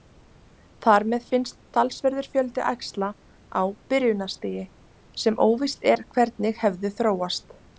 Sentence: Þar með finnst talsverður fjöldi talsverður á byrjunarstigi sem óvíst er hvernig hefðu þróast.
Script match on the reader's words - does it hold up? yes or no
no